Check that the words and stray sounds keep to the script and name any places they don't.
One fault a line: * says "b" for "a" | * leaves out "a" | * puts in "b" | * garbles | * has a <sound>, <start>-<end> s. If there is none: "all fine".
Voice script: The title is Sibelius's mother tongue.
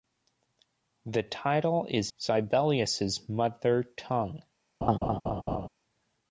* has a laugh, 4.8-5.7 s